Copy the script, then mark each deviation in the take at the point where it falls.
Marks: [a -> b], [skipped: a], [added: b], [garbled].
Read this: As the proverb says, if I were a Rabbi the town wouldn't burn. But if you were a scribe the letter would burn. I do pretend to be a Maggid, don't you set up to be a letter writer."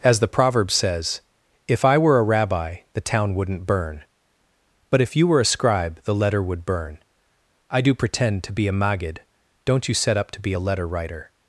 As the proverb says, if I were a Rabbi the town wouldn't burn. But if you were a scribe the letter would burn. I do pretend to be a Maggid, don't you set up to be a letter writer."